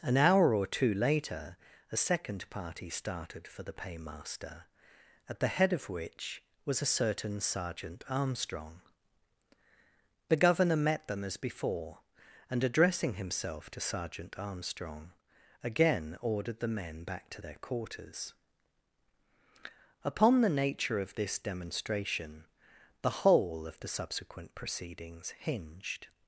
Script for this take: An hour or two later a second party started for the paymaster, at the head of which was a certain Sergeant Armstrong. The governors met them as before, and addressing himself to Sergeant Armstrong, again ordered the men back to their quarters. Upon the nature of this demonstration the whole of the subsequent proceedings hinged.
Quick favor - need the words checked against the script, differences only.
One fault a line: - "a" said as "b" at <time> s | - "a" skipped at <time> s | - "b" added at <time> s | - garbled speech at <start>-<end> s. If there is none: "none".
- "governors" said as "governor" at 10.4 s